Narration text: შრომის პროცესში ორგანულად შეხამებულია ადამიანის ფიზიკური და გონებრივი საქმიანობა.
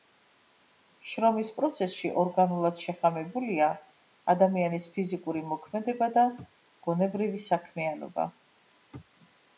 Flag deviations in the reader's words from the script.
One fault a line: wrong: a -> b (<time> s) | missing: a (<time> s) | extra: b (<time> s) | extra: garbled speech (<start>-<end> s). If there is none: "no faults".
extra: მოქმედება (5.5 s)